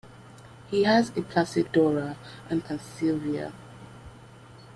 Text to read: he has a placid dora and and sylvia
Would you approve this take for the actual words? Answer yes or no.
yes